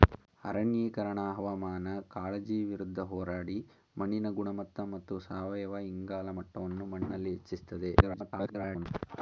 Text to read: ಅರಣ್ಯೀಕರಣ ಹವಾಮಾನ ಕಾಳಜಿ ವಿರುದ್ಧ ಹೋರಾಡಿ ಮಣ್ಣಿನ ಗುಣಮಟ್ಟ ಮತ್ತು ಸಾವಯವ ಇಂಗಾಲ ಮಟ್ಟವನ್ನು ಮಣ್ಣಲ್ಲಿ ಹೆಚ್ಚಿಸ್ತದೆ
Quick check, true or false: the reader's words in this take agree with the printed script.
false